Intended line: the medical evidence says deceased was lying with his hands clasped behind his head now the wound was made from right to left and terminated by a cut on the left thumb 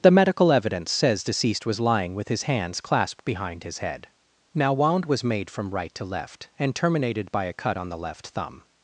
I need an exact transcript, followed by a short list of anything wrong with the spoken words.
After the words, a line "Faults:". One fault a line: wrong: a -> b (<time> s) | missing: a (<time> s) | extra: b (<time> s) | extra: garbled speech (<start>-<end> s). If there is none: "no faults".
the medical evidence says deceased was lying with his hands clasped behind his head now wound was made from right to left and terminated by a cut on the left thumb
Faults:
missing: the (4.7 s)